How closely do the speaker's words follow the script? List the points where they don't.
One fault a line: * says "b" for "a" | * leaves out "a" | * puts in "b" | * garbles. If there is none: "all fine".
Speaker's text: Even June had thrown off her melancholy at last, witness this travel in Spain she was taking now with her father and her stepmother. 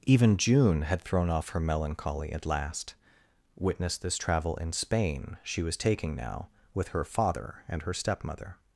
all fine